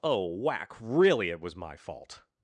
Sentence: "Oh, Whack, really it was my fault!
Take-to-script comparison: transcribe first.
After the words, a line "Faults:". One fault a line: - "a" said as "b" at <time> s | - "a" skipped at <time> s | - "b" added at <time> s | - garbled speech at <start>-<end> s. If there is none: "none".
"Oh, Whack, really it was my fault!
Faults:
none